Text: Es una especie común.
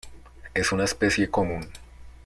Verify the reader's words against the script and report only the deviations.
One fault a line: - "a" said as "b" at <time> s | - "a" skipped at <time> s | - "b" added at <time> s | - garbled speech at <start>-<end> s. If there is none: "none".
none